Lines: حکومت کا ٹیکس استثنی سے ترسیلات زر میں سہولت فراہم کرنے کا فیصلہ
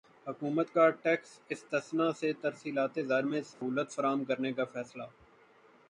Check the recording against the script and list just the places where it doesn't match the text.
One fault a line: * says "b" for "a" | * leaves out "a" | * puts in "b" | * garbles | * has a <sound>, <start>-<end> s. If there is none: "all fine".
* has a dropout, 3.5-3.6 s